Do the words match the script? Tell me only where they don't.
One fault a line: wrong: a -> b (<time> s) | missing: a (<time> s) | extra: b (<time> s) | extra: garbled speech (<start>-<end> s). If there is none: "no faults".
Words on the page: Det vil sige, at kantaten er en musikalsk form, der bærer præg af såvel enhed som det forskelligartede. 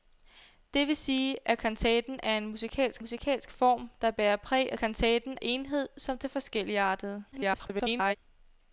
extra: musikalsk (3.0 s)
wrong: såvel -> kantaten (4.8 s)
extra: garbled speech (7.3-8.2 s)